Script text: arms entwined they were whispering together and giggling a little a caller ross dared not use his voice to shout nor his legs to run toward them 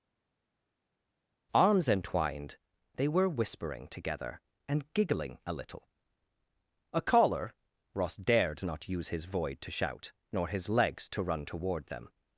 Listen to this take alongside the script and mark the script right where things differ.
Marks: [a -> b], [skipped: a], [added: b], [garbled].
arms entwined they were whispering together and giggling a little a caller ross dared not use his [voice -> void] to shout nor his legs to run toward them